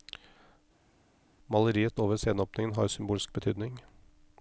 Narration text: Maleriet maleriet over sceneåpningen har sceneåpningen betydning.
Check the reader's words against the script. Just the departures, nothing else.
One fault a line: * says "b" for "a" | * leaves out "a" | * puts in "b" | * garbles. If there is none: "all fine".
* leaves out "maleriet"
* says "symbolsk" for "sceneåpningen"